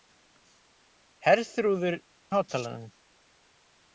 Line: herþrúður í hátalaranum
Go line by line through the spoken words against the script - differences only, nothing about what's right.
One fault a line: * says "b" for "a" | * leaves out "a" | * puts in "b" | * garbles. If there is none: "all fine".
all fine